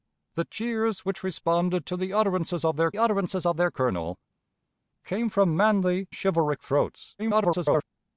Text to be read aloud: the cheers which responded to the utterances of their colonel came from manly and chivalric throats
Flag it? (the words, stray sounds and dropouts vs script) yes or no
yes